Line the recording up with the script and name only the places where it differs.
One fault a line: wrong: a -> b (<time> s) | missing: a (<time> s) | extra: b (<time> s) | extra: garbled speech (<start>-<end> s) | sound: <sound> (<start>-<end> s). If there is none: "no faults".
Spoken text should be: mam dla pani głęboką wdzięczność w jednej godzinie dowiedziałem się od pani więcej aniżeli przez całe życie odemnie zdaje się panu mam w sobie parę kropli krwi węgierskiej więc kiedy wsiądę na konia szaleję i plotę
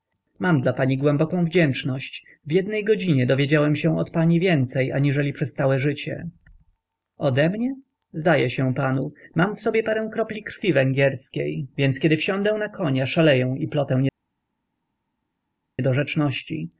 no faults